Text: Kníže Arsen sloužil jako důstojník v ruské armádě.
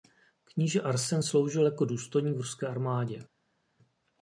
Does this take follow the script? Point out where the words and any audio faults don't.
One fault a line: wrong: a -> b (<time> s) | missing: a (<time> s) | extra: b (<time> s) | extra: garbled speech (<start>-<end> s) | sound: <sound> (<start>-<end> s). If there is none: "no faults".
no faults